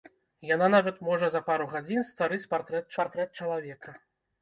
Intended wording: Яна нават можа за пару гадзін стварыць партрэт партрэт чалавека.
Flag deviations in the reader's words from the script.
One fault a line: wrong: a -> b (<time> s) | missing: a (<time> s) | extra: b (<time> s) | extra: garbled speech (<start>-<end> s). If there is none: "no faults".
no faults